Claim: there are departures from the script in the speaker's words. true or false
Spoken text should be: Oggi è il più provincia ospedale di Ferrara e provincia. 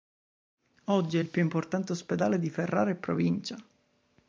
true